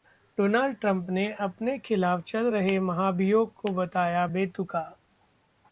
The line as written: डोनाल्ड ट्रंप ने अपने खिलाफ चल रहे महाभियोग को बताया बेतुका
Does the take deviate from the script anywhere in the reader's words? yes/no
no